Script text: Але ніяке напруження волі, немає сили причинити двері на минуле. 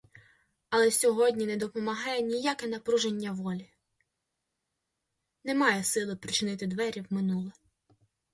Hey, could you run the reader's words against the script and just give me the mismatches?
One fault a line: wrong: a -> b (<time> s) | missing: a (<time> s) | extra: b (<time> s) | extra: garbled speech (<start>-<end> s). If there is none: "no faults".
extra: сьогодні не допомагає (0.9 s)
wrong: на -> в (7.0 s)